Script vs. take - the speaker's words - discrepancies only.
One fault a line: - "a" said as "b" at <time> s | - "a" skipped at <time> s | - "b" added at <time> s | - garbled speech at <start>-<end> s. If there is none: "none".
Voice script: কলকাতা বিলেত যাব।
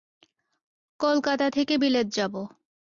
- "থেকে" added at 1.5 s